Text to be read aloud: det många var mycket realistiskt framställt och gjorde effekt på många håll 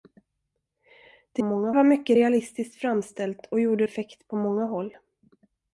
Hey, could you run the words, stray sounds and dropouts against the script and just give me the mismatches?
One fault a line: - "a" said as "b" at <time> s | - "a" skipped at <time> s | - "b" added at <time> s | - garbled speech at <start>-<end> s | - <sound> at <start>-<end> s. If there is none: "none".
none